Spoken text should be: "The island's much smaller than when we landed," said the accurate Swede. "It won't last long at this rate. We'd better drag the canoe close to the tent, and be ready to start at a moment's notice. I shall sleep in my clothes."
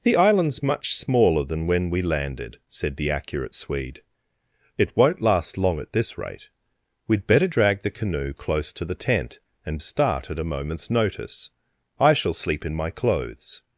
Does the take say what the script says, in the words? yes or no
no